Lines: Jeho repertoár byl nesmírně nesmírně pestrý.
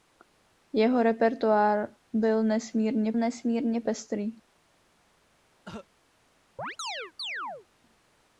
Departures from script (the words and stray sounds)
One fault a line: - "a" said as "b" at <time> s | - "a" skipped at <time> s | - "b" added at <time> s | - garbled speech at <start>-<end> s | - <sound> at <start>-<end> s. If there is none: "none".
- cough at 5.6-5.9 s
- chirp at 6.6-7.7 s